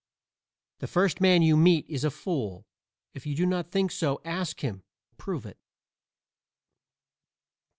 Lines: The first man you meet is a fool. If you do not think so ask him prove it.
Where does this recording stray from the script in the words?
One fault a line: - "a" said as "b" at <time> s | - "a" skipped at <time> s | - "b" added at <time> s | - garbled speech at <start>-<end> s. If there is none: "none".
none